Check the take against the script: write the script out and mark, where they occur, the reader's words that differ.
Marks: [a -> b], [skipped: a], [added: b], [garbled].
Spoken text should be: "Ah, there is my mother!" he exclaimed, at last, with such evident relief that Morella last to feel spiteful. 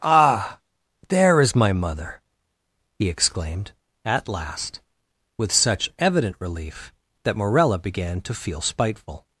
"Ah, there is my mother!" he exclaimed, at last, with such evident relief that Morella [last -> began] to feel spiteful.